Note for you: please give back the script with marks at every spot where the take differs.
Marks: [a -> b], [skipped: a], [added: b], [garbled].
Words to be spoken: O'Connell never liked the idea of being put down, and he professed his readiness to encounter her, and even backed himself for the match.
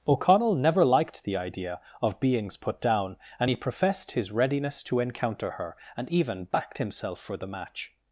O'Connell never liked the idea of [being -> beings] put down, and he professed his readiness to encounter her, and even backed himself for the match.